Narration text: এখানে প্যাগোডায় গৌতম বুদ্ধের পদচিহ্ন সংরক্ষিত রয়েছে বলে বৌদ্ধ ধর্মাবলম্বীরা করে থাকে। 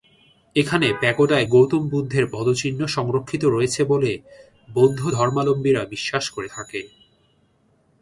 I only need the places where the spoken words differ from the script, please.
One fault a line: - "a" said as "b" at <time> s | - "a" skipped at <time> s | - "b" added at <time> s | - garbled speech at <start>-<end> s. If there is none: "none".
- "বিশ্বাস" added at 5.9 s